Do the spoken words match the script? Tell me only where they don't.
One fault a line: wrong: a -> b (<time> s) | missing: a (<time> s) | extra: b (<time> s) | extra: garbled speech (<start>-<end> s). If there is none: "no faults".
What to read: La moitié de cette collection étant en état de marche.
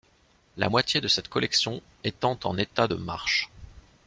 no faults